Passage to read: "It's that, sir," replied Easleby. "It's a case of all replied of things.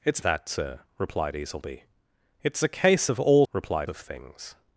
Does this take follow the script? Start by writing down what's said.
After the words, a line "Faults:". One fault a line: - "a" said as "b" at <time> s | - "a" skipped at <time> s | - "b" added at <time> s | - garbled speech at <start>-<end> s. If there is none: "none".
"It's that, sir," replied Easleby. "It's a case of all replied of things.
Faults:
none